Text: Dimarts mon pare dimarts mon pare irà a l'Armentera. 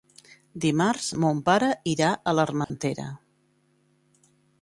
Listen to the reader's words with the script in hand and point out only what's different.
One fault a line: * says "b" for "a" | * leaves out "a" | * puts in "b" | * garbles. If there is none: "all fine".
* leaves out "dimarts mon pare"